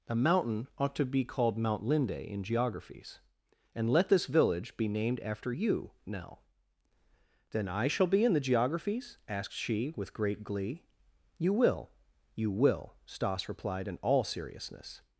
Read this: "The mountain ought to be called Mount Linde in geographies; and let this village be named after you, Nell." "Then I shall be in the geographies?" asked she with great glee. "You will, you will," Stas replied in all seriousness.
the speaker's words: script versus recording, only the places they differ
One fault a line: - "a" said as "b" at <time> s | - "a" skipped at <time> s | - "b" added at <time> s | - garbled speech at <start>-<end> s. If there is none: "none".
- "The" said as "A" at 0.1 s